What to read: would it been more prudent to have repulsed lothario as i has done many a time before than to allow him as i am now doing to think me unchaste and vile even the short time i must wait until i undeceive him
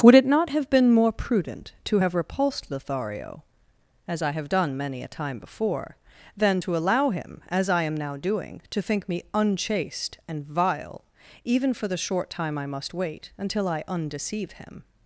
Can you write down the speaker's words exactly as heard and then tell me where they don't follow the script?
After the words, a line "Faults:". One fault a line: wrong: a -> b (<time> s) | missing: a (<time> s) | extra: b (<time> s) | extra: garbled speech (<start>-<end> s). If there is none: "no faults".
would it not have been more prudent to have repulsed lothario as i have done many a time before than to allow him as i am now doing to think me unchaste and vile even for the short time i must wait until i undeceive him
Faults:
extra: not have (0.2 s)
wrong: has -> have (4.3 s)
extra: for (11.7 s)